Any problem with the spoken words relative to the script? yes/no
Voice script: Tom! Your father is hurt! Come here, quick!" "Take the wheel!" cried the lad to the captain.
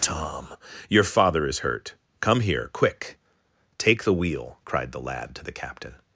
no